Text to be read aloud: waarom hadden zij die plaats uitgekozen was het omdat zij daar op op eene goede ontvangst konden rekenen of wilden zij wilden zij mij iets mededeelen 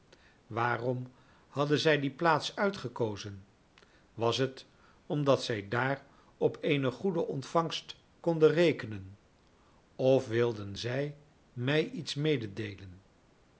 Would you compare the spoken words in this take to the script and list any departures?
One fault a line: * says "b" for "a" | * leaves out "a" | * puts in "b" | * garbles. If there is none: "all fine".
* leaves out "op"
* leaves out "wilden zij"